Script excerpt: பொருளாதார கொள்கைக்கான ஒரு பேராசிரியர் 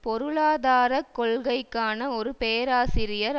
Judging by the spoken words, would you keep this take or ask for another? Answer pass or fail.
pass